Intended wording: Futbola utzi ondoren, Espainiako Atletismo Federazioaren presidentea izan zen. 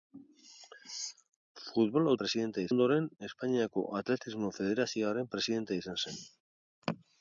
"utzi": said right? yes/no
no